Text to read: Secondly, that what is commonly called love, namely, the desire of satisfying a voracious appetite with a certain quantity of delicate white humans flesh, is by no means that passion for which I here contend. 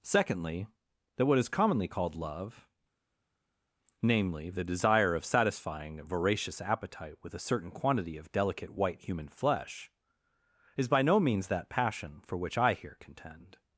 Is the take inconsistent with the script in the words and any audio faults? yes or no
yes